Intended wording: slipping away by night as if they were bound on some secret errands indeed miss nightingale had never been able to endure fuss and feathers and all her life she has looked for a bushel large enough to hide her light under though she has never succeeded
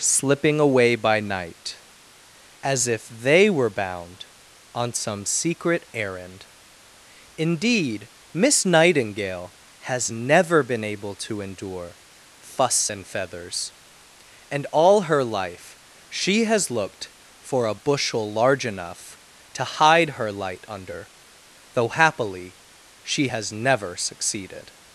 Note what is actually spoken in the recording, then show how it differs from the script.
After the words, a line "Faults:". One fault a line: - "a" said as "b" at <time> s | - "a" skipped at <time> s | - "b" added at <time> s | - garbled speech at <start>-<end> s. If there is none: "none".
slipping away by night as if they were bound on some secret errand indeed miss nightingale has never been able to endure fuss and feathers and all her life she has looked for a bushel large enough to hide her light under though happily she has never succeeded
Faults:
- "errands" said as "errand" at 5.9 s
- "had" said as "has" at 9.8 s
- "happily" added at 21.9 s